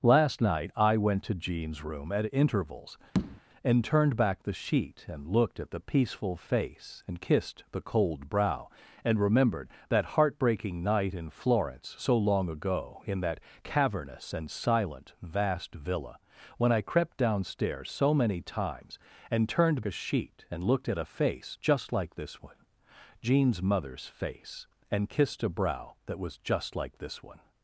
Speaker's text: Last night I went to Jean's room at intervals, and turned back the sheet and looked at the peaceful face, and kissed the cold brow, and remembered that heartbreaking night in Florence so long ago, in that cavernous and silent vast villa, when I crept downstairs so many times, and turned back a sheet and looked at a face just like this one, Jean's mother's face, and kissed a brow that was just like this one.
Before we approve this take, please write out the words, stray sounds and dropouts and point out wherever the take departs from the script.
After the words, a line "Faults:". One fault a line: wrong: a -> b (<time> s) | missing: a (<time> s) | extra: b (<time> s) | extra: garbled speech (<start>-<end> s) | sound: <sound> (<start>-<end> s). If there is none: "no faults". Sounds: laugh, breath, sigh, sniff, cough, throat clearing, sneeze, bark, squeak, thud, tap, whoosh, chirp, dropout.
Last night I went to Jean's room at intervals, and turned back the sheet and looked at the peaceful face, and kissed the cold brow, and remembered that heartbreaking night in Florence so long ago, in that cavernous and silent vast villa, when I crept downstairs so many times, and turned a sheet and looked at a face just like this one, Jean's mother's face, and kissed a brow that was just like this one.
Faults:
sound: tap (3.1-3.4 s)
missing: back (19.8 s)